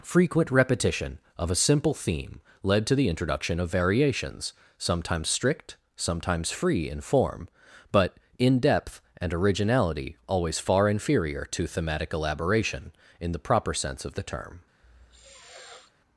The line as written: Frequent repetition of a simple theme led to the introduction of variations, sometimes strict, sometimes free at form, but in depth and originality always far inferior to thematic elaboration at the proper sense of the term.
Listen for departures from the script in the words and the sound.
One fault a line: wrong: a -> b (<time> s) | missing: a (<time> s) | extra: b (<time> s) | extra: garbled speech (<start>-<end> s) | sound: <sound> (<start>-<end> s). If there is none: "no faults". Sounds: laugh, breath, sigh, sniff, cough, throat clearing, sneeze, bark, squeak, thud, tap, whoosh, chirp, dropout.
wrong: at -> in (6.9 s)
wrong: at -> in (13.2 s)
sound: sniff (14.8-15.9 s)